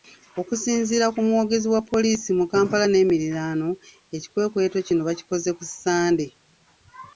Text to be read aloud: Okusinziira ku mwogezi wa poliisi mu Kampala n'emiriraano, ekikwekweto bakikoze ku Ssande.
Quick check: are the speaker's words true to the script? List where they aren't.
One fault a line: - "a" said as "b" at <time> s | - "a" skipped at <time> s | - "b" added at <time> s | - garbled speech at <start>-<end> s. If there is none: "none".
- "kino" added at 4.9 s